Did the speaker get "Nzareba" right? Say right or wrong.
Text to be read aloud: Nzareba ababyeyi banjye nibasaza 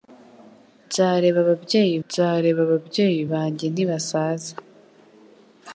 right